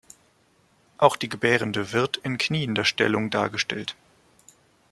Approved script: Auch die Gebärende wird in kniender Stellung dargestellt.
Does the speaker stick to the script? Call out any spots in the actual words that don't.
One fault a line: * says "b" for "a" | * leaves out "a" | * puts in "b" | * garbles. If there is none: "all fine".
all fine